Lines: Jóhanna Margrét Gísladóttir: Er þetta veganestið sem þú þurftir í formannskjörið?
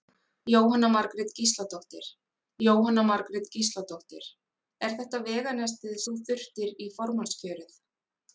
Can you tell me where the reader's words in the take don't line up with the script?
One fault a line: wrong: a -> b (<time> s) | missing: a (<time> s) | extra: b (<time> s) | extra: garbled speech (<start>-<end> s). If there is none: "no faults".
extra: jóhanna Margrét Gísladóttir (2.6 s)
missing: sem (6.0 s)